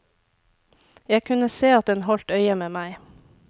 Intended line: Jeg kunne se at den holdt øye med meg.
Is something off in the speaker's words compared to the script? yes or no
no